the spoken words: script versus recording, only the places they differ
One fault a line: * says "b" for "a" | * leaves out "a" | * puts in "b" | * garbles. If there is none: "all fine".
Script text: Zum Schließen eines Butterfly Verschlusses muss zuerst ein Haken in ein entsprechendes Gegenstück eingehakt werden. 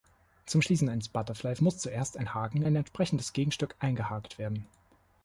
* leaves out "Verschlusses"
* leaves out "in"